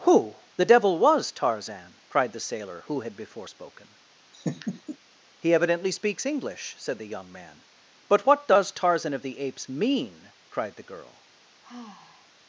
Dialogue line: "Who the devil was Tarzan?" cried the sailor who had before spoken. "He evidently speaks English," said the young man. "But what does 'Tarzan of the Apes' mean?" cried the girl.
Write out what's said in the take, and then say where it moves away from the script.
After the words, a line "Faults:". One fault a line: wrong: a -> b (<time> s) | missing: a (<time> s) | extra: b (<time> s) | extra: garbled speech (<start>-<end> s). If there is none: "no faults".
"Who the devil was Tarzan?" cried the sailor who had before spoken. "He evidently speaks English," said the young man. "But what does 'Tarzan of the Apes' mean?" cried the girl.
Faults:
no faults